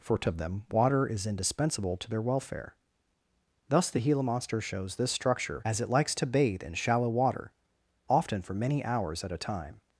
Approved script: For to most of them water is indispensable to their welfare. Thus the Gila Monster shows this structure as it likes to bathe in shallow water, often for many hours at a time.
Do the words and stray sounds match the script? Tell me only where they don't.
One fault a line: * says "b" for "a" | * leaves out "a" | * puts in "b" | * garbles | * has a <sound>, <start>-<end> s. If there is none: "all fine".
* leaves out "most"